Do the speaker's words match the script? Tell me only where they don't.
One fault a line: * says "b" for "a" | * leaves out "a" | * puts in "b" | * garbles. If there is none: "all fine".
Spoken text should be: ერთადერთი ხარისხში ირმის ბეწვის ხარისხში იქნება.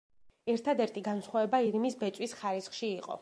* says "განსხვავება" for "ხარისხში"
* says "იყო" for "იქნება"